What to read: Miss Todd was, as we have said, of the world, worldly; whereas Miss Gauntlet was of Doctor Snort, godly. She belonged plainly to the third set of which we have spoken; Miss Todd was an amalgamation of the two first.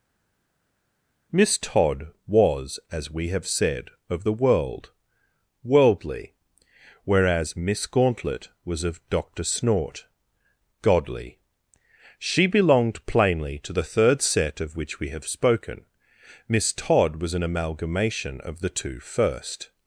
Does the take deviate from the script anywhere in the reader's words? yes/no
no